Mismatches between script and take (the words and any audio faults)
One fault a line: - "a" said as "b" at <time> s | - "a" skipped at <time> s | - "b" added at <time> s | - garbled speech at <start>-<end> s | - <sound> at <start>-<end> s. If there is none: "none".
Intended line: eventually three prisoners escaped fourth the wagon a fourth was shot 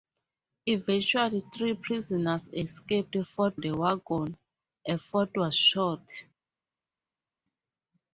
none